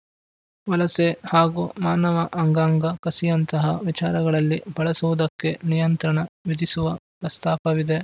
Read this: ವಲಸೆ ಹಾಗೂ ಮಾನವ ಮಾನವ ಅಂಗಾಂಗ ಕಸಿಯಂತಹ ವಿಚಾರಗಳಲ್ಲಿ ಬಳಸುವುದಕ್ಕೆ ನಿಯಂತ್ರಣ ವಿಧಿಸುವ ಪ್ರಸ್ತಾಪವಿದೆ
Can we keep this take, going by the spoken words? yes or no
no